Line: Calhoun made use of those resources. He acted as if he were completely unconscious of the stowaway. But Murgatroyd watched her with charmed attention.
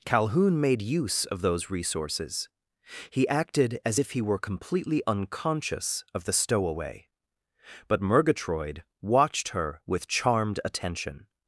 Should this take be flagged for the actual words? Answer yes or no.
no